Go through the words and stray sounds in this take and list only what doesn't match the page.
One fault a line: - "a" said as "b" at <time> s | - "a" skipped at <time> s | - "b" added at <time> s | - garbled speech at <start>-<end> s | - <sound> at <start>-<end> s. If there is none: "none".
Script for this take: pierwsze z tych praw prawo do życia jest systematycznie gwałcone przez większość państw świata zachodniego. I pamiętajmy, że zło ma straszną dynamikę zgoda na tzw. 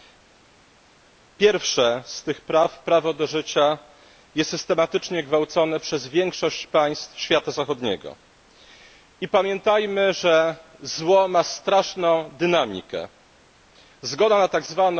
none